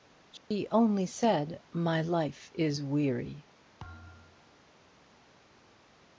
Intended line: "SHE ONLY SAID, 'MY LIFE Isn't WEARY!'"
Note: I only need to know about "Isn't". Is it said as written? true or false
false